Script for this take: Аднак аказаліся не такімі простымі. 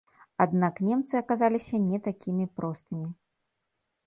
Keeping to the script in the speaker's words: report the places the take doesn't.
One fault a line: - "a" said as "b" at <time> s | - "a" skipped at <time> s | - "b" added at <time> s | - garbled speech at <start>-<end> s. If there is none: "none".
- "немцы" added at 0.9 s